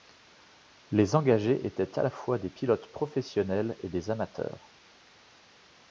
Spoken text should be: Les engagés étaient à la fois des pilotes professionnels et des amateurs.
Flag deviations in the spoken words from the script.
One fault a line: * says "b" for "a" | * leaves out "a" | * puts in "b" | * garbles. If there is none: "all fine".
all fine